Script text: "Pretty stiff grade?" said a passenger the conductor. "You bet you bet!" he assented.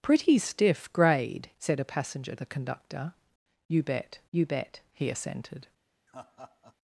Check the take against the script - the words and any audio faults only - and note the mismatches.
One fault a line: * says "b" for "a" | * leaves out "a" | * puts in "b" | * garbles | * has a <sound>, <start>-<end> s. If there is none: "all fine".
* has a laugh, 6.1-6.8 s